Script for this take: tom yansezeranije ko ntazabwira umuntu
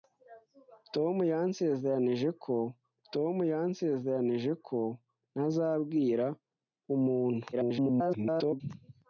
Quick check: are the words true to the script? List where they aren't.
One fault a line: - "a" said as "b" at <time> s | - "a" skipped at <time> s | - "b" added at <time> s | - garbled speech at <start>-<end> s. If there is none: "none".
- "tom yansezeranije ko" added at 3.1 s
- garbled speech at 7.5-8.6 s